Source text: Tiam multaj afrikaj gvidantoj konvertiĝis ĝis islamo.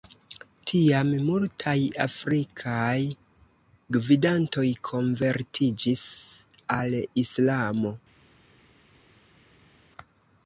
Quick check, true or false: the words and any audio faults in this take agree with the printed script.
false